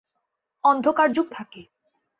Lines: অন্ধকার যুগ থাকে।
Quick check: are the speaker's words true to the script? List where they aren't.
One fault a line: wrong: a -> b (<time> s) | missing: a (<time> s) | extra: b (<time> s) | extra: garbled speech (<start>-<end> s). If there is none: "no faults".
no faults